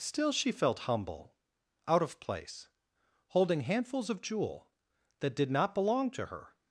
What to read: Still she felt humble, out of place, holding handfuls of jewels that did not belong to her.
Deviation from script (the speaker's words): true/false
true